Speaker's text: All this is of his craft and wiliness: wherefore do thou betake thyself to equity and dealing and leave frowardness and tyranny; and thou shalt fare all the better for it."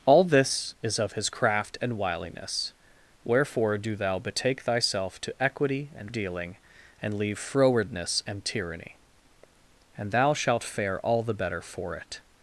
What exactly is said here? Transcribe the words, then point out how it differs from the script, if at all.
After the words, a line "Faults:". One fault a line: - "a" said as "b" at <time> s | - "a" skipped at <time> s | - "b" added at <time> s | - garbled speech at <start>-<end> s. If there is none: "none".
All this is of his craft and wiliness: wherefore do thou betake thyself to equity and dealing and leave frowardness and tyranny; and thou shalt fare all the better for it."
Faults:
none